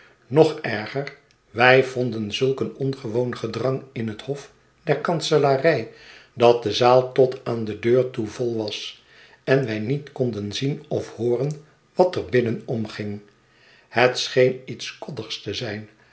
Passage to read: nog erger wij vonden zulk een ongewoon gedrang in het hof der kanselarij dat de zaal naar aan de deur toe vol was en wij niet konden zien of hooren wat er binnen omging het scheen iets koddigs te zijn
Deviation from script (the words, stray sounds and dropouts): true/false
true